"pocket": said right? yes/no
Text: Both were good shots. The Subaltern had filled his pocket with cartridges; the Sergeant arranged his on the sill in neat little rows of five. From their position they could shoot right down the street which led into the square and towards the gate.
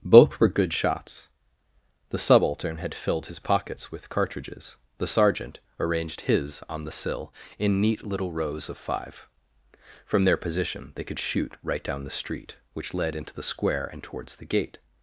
no